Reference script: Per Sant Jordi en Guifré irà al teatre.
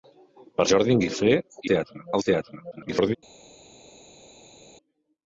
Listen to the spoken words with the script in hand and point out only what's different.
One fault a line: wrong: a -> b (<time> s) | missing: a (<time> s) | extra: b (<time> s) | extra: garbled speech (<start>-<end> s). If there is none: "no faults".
missing: Sant (0.7 s)
wrong: irà -> teatre (1.7 s)
extra: garbled speech (2.7-3.2 s)